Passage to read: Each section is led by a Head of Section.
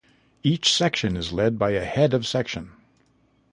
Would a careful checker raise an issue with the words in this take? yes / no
no